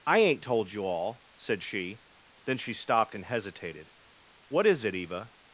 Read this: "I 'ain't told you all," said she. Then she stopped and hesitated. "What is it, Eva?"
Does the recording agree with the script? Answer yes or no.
yes